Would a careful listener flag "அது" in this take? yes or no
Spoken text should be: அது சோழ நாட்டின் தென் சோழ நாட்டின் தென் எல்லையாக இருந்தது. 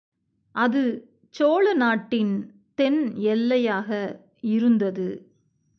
no